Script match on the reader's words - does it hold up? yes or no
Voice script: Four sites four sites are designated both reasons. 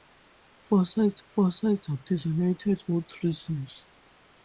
yes